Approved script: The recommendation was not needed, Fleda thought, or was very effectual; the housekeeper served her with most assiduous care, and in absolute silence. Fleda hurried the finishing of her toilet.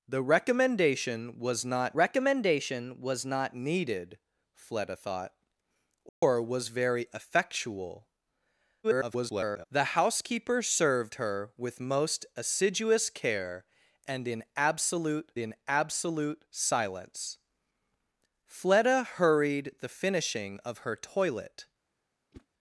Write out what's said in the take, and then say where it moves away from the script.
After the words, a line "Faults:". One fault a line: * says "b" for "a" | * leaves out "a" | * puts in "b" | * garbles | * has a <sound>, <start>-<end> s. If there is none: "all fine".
The recommendation was not recommendation was not needed, Fleda thought, or was very effectual; [garbled] the housekeeper served her with most assiduous care, and in absolute in absolute silence. Fleda hurried the finishing of her toilet.
Faults:
* puts in "recommendation was not"
* has a dropout, 6.1-6.2 s
* garbles
* puts in "in absolute"
* has a whoosh, 22.3-22.5 s